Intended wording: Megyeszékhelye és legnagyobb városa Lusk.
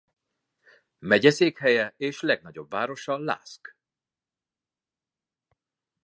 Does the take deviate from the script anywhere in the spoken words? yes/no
no